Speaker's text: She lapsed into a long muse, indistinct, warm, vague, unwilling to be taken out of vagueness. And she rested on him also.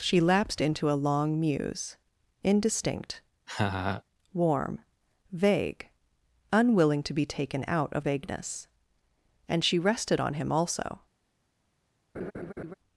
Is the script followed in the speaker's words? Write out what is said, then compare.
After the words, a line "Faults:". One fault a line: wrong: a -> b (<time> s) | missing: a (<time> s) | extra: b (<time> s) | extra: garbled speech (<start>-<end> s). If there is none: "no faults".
She lapsed into a long muse, indistinct, warm, vague, unwilling to be taken out of vagueness. And she rested on him also.
Faults:
no faults